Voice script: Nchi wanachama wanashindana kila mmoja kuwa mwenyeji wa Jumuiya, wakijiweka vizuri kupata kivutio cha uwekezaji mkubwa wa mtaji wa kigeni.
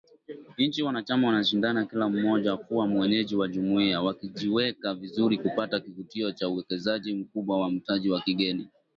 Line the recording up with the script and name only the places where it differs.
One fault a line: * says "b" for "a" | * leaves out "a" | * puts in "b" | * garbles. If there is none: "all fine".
all fine